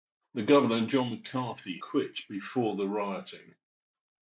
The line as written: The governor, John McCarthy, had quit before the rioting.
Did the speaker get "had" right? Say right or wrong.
wrong